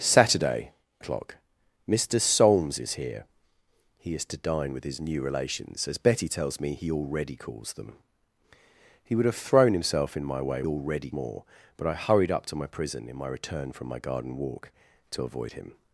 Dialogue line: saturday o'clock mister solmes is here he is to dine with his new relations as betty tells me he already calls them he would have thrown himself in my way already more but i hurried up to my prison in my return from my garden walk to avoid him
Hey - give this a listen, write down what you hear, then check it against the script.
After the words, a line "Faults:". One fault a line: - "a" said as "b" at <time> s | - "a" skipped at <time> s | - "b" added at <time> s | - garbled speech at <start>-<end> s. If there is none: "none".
saturday o'clock mister solmes is here he is to dine with his new relations as betty tells me he already calls them he would have thrown himself in my way already more but i hurried up to my prison in my return from my garden walk to avoid him
Faults:
none